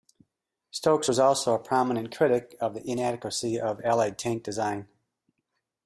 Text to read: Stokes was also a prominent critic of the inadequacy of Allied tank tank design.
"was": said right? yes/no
yes